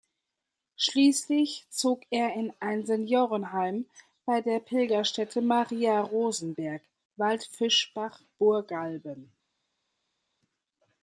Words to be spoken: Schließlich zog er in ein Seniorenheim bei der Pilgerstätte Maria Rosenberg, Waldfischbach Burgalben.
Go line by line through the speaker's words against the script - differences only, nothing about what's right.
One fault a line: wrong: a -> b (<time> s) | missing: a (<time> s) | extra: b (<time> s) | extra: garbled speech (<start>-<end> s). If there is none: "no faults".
no faults